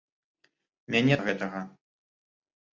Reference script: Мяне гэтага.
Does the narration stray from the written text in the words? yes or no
no